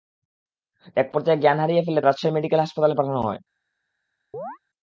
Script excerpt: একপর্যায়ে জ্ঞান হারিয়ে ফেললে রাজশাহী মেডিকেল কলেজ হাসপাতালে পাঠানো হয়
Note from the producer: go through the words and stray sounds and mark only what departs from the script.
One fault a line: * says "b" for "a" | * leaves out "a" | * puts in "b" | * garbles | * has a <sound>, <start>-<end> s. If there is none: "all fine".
* has a chirp, 4.3-4.6 s